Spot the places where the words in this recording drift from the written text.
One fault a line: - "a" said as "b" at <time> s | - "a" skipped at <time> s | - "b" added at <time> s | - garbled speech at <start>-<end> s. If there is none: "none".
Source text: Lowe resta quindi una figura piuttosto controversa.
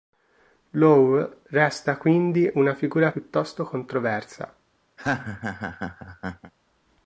none